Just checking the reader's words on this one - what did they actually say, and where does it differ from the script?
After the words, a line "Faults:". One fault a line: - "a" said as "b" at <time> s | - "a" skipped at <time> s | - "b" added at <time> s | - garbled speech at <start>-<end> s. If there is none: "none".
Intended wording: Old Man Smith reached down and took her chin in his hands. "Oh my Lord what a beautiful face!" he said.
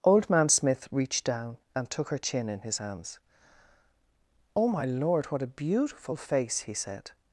Old Man Smith reached down and took her chin in his hands. "Oh my Lord what a beautiful face!" he said.
Faults:
none